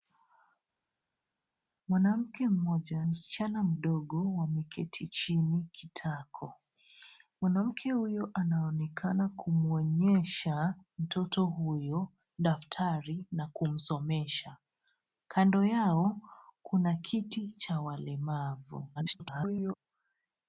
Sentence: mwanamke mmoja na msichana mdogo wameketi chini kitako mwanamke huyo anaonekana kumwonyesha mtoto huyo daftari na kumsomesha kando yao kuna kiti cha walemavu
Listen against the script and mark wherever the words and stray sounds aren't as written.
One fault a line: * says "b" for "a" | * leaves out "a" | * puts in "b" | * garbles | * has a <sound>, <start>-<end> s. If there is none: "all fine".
* leaves out "na"
* garbles